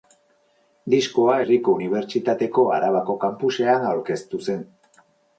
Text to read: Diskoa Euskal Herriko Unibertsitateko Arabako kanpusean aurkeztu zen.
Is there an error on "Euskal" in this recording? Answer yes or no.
yes